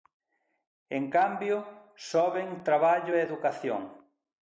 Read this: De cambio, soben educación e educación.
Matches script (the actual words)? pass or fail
fail